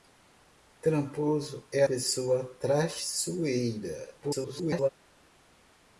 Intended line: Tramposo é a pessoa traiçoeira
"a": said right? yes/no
no